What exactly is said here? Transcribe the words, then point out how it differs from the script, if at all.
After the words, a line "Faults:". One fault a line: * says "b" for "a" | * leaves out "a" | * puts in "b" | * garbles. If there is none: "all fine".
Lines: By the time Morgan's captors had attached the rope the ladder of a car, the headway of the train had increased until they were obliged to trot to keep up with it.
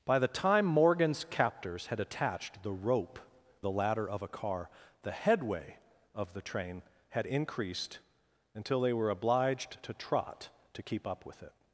By the time Morgan's captors had attached the rope the ladder of a car, the headway of the train had increased until they were obliged to trot to keep up with it.
Faults:
all fine